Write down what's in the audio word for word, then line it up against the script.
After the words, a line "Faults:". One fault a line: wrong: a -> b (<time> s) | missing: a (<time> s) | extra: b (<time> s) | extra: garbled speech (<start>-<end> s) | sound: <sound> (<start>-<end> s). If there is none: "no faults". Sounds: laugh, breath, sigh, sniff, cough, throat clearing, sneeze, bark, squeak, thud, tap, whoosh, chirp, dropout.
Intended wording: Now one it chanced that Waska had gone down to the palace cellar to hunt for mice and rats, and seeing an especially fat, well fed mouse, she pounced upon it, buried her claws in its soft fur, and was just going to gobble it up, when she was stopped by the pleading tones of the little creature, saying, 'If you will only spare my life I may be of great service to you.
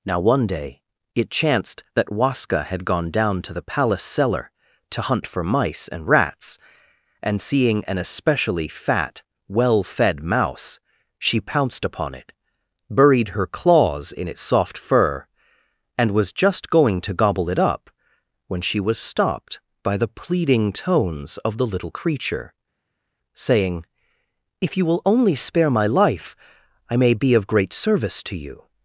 Now one day it chanced that Waska had gone down to the palace cellar to hunt for mice and rats, and seeing an especially fat, well fed mouse, she pounced upon it, buried her claws in its soft fur, and was just going to gobble it up, when she was stopped by the pleading tones of the little creature, saying, 'If you will only spare my life I may be of great service to you.
Faults:
extra: day (0.5 s)